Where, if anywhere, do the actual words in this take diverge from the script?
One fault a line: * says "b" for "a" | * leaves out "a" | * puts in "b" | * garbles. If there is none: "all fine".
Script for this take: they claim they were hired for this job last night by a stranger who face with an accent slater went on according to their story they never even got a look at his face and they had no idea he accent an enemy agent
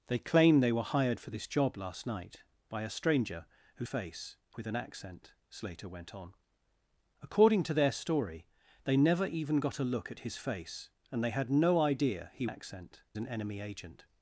all fine